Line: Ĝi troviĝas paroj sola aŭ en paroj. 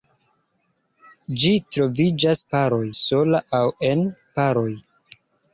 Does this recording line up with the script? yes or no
yes